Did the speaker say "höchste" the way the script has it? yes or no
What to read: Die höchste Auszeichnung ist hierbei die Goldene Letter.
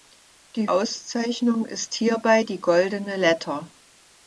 no